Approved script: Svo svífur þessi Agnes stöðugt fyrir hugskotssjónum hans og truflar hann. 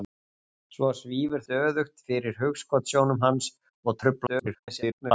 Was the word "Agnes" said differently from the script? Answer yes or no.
yes